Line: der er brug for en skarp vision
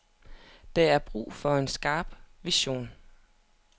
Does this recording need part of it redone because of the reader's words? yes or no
no